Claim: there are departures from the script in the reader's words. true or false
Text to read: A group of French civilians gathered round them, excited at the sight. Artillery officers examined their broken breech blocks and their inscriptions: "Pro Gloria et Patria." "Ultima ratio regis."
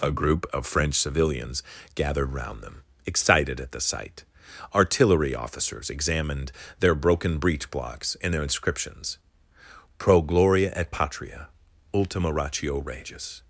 false